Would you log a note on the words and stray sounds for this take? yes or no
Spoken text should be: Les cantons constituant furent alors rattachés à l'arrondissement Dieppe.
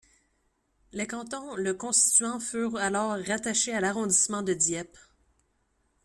yes